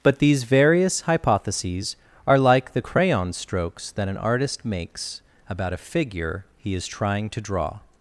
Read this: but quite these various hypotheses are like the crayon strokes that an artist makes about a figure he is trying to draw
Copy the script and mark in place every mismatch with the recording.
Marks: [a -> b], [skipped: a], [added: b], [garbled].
but [skipped: quite] these various hypotheses are like the crayon strokes that an artist makes about a figure he is trying to draw